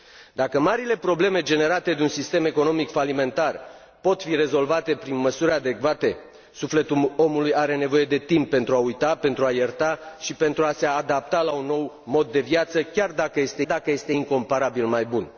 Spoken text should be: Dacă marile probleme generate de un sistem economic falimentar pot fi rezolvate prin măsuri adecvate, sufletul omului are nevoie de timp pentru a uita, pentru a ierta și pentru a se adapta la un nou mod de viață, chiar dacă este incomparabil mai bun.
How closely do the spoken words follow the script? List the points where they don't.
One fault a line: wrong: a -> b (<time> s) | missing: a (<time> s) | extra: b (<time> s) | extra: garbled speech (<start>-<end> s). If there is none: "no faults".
extra: dacă este (13.6 s)